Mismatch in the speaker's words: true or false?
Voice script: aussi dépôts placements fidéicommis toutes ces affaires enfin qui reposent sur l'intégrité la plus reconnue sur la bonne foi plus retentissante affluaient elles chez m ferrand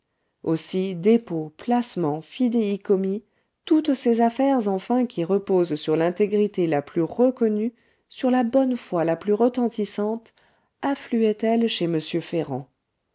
true